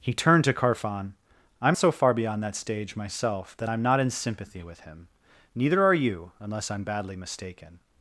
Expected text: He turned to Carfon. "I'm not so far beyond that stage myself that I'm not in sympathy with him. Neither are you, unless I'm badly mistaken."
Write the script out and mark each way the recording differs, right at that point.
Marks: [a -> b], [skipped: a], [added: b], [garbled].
He turned to Carfon. "I'm [skipped: not] so far beyond that stage myself that I'm not in sympathy with him. Neither are you, unless I'm badly mistaken."